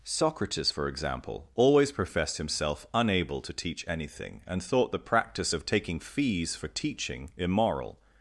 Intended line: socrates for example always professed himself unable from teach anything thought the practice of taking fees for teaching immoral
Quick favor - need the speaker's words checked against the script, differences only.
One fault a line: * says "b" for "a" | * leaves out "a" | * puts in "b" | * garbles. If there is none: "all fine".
* says "to" for "from"
* puts in "and"